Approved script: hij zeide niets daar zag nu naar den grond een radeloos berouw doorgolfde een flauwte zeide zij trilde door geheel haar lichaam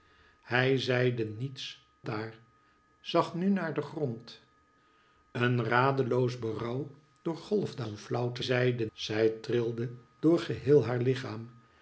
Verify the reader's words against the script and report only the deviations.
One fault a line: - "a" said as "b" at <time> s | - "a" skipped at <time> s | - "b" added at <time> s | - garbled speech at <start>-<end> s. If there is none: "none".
none